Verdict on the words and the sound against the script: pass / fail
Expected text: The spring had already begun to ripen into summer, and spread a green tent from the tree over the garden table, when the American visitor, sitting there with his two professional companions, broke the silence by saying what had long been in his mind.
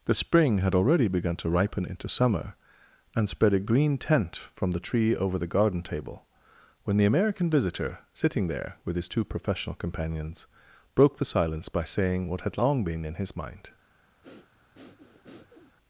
fail